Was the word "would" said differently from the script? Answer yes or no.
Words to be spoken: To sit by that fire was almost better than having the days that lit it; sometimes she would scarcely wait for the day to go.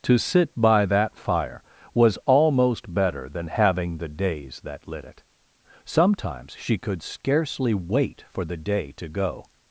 yes